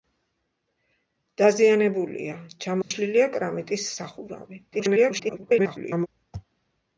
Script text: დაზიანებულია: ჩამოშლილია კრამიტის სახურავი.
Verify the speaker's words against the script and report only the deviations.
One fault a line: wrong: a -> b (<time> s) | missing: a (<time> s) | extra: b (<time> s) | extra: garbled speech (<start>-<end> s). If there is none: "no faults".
extra: garbled speech (4.7-6.1 s)